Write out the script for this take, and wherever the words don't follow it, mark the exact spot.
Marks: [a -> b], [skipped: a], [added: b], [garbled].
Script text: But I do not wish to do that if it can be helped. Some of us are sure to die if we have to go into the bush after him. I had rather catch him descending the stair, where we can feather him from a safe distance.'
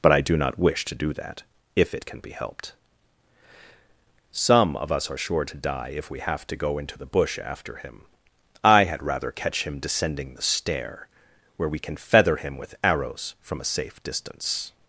But I do not wish to do that if it can be helped. Some of us are sure to die if we have to go into the bush after him. I had rather catch him descending the stair, where we can feather him [added: with arrows] from a safe distance.'